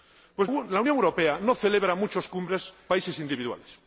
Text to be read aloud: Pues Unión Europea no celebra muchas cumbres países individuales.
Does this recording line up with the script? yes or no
yes